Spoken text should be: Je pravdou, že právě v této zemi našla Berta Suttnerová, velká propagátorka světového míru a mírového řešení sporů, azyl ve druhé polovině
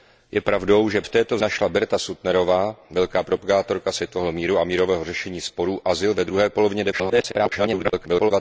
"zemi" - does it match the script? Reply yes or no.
no